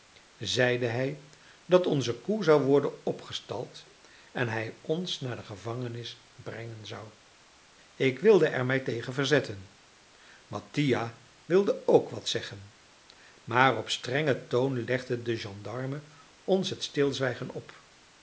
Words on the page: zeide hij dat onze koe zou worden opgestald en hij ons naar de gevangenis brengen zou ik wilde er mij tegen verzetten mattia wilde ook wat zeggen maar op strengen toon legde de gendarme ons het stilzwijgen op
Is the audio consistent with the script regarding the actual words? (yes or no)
yes